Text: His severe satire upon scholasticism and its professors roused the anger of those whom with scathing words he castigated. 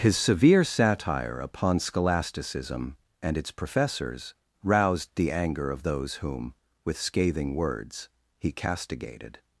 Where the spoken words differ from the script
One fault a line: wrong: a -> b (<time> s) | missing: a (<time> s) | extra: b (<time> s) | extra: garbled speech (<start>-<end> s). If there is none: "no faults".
no faults